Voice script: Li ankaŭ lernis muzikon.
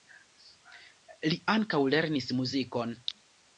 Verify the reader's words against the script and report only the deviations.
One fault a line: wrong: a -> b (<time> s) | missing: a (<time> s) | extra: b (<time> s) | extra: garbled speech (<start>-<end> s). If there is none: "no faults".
no faults